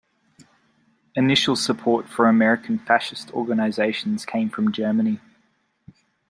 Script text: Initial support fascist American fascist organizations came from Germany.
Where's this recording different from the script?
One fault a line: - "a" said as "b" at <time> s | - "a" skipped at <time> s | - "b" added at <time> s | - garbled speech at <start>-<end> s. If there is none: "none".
- "fascist" said as "for" at 2.1 s